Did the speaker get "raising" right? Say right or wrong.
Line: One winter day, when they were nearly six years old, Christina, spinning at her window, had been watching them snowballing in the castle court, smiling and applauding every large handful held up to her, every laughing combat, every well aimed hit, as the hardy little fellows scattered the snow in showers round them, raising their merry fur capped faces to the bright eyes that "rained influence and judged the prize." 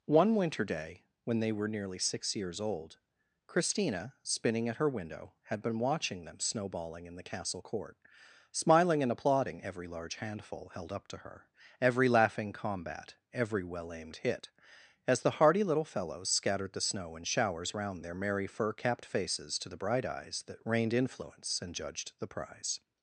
wrong